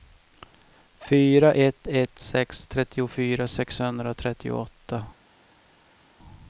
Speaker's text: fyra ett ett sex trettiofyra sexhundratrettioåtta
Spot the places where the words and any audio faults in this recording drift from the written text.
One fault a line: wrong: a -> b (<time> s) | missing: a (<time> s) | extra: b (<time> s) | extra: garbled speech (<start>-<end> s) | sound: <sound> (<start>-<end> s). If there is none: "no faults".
no faults